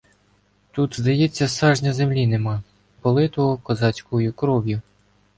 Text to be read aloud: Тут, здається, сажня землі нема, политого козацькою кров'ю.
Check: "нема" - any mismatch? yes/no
no